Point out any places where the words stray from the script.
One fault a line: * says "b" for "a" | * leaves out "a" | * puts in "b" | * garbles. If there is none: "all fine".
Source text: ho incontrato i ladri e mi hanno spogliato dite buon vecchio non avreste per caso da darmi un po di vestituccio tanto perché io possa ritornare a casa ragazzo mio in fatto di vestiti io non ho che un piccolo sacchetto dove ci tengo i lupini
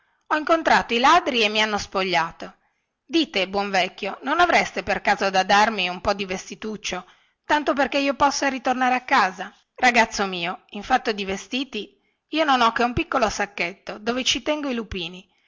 all fine